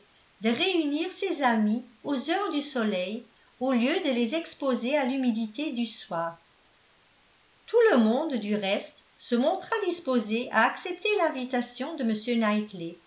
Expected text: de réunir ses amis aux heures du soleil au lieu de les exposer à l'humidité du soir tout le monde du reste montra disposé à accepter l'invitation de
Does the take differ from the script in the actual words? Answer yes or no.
yes